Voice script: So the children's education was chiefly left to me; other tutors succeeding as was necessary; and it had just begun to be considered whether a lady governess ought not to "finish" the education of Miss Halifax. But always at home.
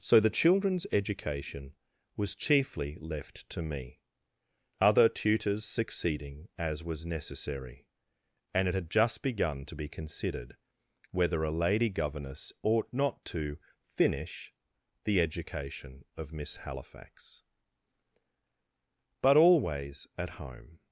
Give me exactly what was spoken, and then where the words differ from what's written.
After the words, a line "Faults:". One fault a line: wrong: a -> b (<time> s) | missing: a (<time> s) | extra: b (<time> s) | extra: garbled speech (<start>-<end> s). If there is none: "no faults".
So the children's education was chiefly left to me; other tutors succeeding as was necessary; and it had just begun to be considered whether a lady governess ought not to "finish" the education of Miss Halifax. But always at home.
Faults:
no faults